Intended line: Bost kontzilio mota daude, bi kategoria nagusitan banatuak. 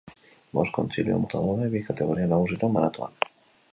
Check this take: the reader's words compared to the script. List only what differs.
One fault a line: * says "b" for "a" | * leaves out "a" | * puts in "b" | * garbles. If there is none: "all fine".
all fine